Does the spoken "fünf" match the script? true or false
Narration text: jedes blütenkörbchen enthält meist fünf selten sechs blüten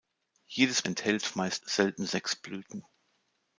false